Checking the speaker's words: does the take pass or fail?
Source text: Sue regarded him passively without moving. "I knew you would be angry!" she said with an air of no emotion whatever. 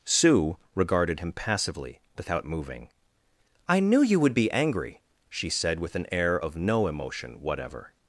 pass